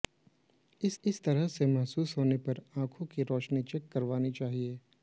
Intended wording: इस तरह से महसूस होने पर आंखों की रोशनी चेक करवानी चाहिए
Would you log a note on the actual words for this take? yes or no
yes